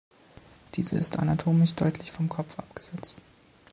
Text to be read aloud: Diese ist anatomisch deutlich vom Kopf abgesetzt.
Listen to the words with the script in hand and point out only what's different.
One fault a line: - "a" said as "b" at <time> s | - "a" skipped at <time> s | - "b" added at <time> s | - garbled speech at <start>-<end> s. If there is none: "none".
none